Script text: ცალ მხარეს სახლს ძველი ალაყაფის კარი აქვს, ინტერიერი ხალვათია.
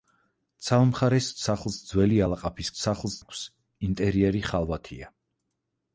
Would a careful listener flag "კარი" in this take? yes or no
yes